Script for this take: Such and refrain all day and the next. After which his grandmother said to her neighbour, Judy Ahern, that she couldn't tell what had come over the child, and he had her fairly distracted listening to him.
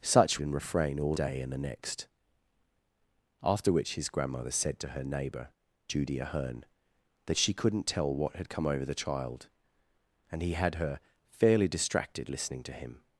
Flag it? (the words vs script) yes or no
no